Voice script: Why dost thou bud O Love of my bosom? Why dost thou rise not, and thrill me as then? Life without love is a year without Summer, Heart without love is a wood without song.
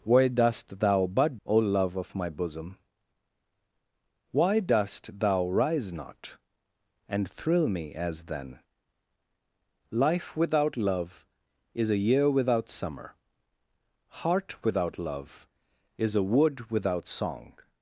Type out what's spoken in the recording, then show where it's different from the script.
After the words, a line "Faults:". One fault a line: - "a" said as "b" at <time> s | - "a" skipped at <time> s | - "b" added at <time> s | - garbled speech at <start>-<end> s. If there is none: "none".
Why dost thou bud O Love of my bosom? Why dost thou rise not, and thrill me as then? Life without love is a year without Summer, Heart without love is a wood without song.
Faults:
none